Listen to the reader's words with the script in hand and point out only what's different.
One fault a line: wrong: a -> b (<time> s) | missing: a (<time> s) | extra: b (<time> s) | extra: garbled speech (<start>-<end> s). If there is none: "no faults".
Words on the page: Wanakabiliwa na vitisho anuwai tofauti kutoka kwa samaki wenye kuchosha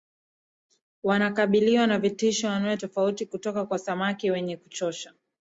no faults